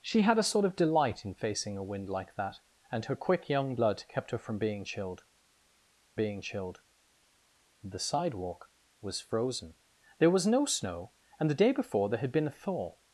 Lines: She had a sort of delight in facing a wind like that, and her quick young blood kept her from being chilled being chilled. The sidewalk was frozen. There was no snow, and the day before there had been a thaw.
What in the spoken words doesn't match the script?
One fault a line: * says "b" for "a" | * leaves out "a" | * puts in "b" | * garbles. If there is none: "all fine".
all fine